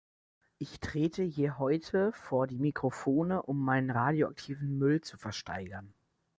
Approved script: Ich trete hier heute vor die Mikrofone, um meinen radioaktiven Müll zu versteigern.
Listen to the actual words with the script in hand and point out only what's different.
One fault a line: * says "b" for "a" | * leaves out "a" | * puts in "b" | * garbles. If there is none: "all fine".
all fine